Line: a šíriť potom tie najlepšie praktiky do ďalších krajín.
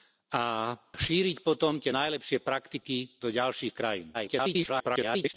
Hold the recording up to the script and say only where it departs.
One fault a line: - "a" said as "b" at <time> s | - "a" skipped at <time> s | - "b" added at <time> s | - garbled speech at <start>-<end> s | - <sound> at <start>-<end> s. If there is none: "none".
- garbled speech at 4.1-5.3 s